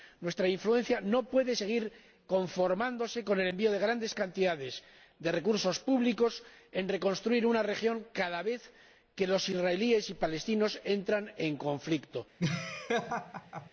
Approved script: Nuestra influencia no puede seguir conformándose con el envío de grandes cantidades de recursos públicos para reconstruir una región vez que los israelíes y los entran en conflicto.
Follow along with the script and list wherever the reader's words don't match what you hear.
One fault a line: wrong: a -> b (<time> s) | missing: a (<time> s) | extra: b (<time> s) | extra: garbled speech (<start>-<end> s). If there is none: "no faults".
extra: cada (8.1 s)
extra: palestinos (10.2 s)